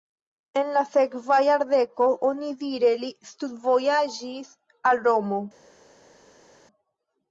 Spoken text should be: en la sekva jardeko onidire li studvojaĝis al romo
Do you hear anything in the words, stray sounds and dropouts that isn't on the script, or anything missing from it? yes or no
no